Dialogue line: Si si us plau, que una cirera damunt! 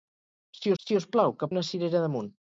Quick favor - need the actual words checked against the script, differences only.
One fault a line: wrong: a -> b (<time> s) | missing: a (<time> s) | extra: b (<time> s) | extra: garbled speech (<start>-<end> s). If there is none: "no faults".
no faults